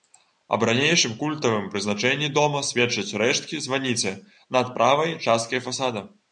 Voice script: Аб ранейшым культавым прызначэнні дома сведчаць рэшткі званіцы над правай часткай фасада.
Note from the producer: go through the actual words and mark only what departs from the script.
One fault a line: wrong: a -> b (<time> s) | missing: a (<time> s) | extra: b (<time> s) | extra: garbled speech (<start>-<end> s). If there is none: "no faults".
no faults